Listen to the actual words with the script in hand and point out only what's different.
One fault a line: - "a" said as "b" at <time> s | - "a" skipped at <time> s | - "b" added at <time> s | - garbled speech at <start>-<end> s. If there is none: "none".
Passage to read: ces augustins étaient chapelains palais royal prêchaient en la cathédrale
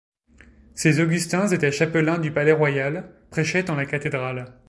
- "du" added at 2.2 s